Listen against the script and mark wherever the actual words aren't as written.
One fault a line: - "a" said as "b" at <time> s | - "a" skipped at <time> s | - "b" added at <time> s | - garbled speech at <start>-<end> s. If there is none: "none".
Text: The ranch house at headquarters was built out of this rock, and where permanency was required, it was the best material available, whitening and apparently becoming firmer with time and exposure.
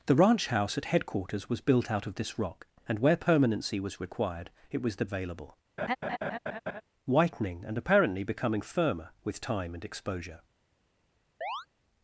- "best material" skipped at 5.0 s